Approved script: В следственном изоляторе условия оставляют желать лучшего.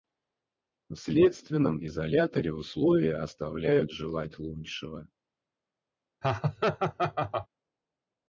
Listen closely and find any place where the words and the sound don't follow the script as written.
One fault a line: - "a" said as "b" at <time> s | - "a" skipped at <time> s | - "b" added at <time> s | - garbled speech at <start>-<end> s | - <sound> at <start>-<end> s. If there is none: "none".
- laugh at 6.2-7.5 s